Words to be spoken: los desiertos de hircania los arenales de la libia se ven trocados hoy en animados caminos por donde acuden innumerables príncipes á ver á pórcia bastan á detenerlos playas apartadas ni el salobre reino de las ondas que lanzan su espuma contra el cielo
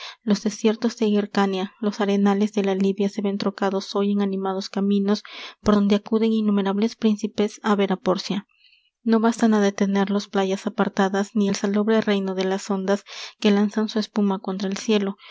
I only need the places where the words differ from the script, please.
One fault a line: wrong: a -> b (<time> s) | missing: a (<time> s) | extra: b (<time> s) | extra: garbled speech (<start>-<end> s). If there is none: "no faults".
extra: no (9.0 s)